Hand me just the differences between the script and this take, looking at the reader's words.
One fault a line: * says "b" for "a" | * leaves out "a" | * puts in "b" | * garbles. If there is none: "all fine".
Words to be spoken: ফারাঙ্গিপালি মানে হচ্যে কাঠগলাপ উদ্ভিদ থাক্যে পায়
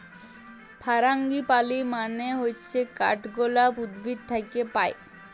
all fine